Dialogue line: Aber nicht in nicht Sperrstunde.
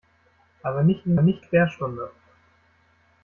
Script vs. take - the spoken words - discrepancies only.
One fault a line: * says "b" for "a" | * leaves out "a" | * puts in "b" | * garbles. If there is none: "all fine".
all fine